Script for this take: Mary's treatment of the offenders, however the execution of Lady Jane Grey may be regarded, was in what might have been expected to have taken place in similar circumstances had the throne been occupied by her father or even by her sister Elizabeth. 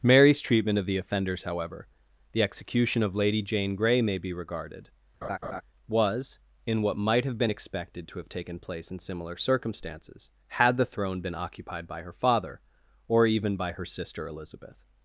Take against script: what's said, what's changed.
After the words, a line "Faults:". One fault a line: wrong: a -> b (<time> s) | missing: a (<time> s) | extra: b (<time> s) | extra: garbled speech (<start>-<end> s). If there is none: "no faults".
Mary's treatment of the offenders, however the execution of Lady Jane Grey may be regarded, was in what might have been expected to have taken place in similar circumstances had the throne been occupied by her father or even by her sister Elizabeth.
Faults:
no faults